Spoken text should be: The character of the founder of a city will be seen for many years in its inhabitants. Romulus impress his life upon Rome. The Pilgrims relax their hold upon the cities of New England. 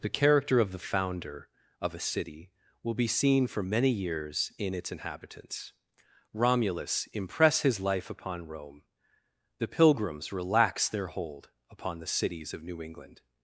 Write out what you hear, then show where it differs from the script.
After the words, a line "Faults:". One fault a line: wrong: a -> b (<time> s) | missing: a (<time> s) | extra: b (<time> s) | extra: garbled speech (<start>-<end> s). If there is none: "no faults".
The character of the founder of a city will be seen for many years in its inhabitants. Romulus impress his life upon Rome. The Pilgrims relax their hold upon the cities of New England.
Faults:
no faults